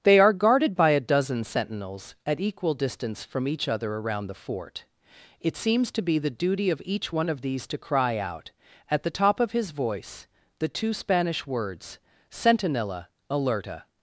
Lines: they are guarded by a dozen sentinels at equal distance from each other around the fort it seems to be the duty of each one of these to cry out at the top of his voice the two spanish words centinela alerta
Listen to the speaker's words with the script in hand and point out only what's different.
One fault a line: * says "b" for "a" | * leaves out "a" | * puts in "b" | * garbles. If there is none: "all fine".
all fine